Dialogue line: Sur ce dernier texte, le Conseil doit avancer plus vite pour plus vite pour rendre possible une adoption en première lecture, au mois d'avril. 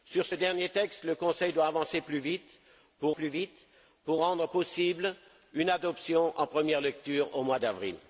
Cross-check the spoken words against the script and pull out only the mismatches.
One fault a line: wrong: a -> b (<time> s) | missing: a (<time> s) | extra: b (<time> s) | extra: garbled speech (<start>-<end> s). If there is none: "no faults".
no faults